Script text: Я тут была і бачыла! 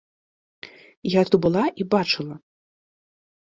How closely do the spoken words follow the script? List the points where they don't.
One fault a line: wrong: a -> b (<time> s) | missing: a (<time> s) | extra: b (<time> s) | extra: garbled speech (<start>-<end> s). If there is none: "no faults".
no faults